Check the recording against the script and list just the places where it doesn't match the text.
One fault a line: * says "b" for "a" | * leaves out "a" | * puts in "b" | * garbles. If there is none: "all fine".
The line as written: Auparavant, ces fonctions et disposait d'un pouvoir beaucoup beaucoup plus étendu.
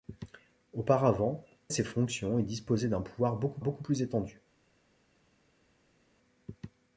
all fine